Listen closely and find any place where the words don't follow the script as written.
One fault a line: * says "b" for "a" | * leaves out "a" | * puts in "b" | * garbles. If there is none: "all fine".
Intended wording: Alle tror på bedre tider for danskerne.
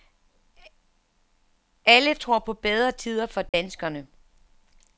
all fine